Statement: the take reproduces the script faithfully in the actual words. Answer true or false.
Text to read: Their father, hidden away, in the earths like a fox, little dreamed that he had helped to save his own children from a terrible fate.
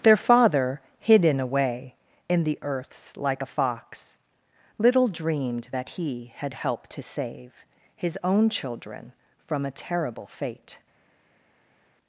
true